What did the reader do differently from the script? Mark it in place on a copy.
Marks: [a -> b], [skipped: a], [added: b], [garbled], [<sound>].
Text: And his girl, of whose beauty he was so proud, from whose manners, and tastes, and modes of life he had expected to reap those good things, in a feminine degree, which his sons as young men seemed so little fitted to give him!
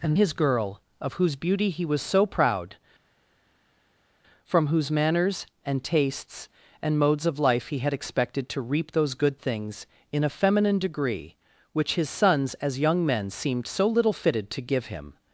And his girl, of whose beauty he was so proud, from whose manners, and tastes, and modes of life he had expected to reap those good things, in a feminine degree, which his sons as young men seemed so little fitted to give him!